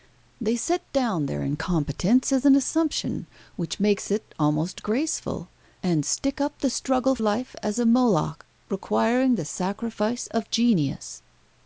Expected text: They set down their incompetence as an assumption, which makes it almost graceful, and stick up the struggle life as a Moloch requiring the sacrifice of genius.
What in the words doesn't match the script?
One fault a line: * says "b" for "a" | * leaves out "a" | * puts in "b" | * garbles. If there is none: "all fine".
all fine